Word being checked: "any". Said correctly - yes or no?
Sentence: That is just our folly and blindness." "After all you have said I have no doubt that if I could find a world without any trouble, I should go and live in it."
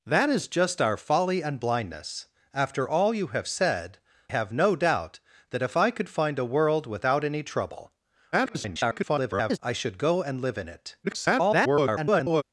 yes